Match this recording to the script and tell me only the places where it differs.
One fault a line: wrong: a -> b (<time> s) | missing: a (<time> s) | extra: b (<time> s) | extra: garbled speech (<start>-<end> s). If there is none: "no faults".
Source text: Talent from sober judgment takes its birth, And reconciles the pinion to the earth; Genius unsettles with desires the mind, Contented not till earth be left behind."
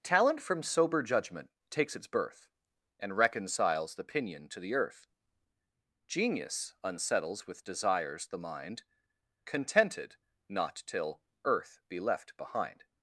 no faults